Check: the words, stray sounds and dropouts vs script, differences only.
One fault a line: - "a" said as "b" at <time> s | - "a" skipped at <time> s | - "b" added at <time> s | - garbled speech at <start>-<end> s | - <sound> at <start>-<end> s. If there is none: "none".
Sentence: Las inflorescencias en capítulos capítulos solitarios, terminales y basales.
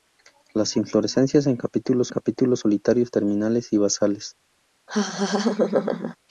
- laugh at 4.9-6.2 s